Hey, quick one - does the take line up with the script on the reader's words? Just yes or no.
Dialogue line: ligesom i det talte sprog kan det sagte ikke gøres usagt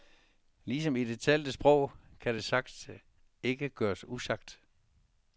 yes